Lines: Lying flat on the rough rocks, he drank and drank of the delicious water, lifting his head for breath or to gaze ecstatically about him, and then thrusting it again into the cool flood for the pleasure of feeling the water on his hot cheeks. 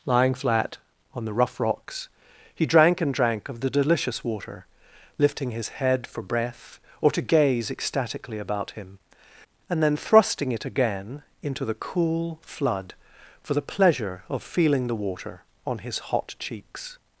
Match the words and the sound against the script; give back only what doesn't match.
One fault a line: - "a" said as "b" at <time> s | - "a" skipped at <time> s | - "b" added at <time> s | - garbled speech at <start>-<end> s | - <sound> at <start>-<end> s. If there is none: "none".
none